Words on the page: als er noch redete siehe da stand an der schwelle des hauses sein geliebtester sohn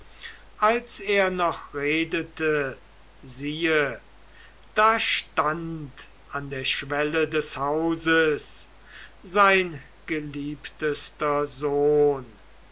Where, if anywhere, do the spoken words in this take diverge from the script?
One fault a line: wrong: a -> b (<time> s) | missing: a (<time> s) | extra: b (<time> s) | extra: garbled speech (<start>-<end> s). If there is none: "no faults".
no faults